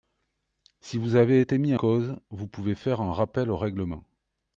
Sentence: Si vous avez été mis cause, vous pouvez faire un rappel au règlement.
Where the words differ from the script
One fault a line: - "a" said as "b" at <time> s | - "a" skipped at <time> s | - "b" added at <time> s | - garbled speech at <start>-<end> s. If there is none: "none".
none